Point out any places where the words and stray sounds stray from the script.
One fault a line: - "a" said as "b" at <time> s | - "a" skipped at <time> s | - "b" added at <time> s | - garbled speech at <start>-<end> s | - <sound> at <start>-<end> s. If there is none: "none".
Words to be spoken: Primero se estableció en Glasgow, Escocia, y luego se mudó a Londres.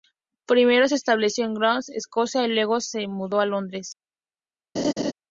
- laugh at 4.8-5.1 s